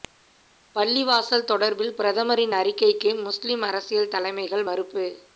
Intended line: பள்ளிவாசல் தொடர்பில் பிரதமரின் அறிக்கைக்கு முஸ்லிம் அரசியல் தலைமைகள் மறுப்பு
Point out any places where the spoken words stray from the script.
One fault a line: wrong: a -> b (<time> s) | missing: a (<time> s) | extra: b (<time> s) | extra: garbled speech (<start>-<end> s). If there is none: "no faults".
no faults